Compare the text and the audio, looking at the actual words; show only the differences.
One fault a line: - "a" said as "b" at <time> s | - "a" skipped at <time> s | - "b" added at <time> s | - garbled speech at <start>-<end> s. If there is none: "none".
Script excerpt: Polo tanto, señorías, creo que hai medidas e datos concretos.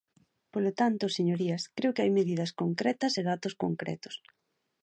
- "concretas" added at 2.6 s